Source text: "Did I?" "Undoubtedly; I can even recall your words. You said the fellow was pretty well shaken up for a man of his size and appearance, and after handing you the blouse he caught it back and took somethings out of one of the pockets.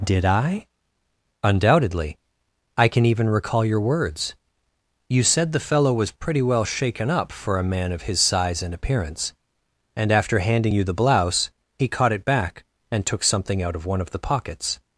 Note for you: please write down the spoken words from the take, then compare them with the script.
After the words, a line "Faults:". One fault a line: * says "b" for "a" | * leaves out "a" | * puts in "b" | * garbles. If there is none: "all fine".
"Did I?" "Undoubtedly; I can even recall your words. You said the fellow was pretty well shaken up for a man of his size and appearance, and after handing you the blouse he caught it back and took something out of one of the pockets.
Faults:
* says "something" for "somethings"